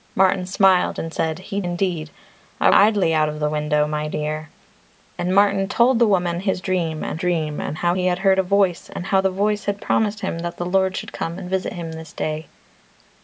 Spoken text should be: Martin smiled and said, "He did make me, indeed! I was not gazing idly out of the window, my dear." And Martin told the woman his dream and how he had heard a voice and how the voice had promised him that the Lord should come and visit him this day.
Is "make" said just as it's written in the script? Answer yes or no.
no